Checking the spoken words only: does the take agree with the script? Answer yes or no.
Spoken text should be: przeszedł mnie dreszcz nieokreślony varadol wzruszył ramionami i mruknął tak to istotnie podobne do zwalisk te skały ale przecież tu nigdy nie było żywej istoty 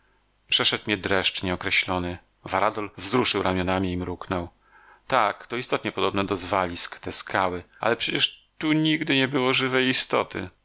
yes